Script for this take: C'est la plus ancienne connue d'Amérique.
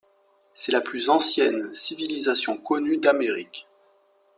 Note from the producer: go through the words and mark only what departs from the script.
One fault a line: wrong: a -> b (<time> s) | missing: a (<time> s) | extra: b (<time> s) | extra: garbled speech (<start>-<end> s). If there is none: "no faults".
extra: civilisation (1.8 s)